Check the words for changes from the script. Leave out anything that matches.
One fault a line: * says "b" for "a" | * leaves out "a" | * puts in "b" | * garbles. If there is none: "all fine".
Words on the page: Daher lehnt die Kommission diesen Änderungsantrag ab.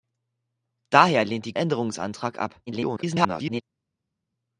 * leaves out "Kommission diesen"
* garbles